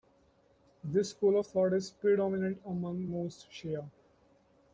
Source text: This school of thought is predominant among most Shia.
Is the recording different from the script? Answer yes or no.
no